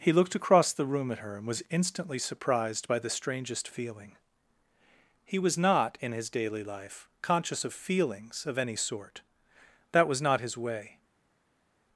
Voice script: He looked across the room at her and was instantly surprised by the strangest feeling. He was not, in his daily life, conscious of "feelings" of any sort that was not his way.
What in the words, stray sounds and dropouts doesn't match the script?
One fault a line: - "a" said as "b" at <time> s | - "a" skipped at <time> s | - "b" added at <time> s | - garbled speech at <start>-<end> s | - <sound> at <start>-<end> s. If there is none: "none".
none